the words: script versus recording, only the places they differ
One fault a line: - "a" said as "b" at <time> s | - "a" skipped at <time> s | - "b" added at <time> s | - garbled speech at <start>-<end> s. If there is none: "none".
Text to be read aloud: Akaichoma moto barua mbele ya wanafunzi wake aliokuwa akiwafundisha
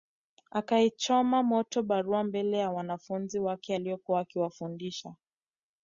none